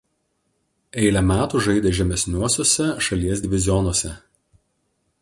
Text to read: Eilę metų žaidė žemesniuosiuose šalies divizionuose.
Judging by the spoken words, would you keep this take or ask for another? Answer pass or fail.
pass